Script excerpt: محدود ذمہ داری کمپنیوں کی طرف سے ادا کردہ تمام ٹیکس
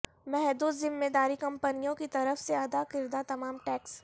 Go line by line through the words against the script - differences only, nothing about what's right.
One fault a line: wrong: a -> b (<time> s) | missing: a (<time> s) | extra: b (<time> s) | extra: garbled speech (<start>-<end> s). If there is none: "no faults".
no faults